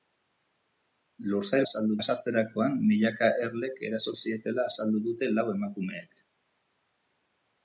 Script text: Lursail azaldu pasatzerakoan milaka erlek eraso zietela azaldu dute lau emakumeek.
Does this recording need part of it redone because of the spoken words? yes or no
no